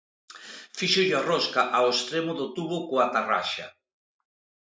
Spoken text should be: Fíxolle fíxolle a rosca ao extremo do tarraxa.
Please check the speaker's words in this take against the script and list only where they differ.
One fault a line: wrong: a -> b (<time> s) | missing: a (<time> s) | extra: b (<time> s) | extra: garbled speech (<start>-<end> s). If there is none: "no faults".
missing: fíxolle (1.1 s)
extra: tubo coa (2.6 s)